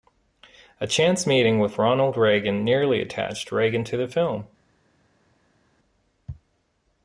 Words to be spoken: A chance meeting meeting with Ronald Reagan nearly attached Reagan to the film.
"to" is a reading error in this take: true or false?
false